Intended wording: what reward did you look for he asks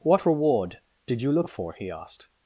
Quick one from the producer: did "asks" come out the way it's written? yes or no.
no